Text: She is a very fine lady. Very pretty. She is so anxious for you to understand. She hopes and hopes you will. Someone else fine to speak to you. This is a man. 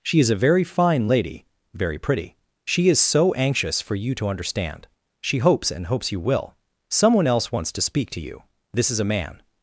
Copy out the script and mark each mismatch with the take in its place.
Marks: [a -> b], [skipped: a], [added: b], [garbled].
She is a very fine lady. Very pretty. She is so anxious for you to understand. She hopes and hopes you will. Someone else [fine -> wants] to speak to you. This is a man.